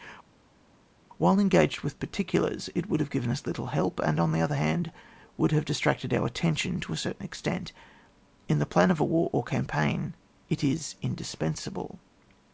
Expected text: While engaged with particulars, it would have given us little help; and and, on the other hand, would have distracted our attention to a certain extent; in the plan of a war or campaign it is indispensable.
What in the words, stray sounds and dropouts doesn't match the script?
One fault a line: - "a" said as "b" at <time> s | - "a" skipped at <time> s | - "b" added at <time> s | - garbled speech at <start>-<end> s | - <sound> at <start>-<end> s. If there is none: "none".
- "and" skipped at 4.2 s